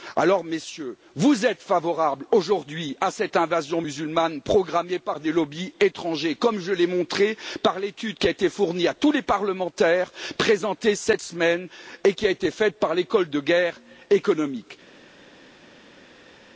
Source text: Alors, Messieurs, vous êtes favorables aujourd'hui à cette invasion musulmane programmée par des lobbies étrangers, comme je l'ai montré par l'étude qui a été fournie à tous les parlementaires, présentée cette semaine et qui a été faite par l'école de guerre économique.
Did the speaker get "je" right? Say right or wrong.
right